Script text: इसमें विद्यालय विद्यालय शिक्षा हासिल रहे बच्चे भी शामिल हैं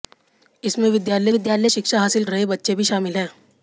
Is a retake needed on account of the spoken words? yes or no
no